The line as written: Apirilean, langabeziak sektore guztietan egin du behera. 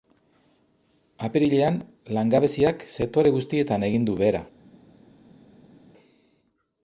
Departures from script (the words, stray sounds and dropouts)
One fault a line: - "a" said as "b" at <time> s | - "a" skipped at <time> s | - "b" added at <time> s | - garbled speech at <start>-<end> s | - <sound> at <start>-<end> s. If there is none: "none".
none